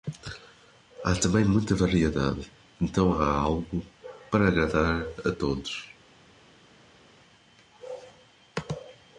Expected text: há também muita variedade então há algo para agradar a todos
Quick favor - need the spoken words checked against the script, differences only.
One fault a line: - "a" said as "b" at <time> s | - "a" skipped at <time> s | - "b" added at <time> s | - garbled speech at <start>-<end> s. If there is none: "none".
none